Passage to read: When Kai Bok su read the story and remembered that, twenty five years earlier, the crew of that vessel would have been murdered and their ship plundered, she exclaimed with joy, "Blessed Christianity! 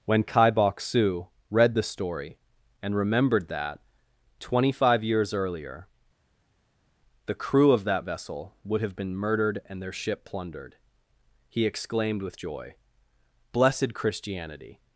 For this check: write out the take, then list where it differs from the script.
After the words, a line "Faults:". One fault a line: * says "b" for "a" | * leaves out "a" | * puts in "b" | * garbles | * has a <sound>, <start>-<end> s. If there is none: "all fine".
When Kai Bok su read the story and remembered that, twenty five years earlier, the crew of that vessel would have been murdered and their ship plundered, he exclaimed with joy, "Blessed Christianity!
Faults:
* says "he" for "she"